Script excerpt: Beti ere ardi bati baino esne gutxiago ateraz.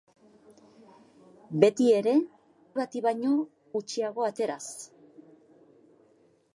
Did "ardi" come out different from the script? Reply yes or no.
yes